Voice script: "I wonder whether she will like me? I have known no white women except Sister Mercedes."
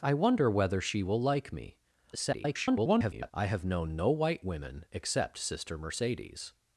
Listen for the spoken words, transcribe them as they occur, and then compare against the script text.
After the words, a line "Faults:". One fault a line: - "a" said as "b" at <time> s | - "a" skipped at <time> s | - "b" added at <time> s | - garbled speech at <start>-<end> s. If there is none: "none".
"I wonder whether she will like me? [garbled] I have known no white women except Sister Mercedes."
Faults:
- garbled speech at 2.1-3.3 s